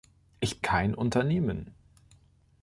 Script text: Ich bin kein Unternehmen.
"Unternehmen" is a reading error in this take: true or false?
false